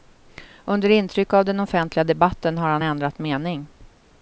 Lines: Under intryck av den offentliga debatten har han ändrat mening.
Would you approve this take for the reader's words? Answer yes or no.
yes